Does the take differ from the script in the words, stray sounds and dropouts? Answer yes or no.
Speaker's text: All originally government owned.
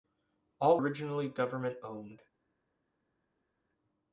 no